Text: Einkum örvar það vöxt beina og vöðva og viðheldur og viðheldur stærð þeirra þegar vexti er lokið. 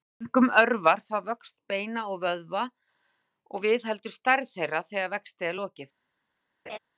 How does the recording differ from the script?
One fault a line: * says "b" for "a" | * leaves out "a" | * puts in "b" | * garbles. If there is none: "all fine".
* leaves out "og viðheldur"